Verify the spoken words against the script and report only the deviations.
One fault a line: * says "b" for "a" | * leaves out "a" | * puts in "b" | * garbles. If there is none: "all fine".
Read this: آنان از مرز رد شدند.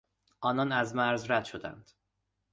all fine